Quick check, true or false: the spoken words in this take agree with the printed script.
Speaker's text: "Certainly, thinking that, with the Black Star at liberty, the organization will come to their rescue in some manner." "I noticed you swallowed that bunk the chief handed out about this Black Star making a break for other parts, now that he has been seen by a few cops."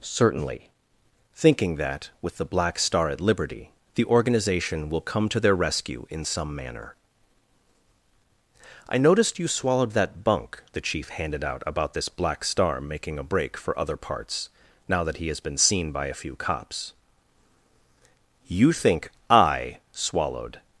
false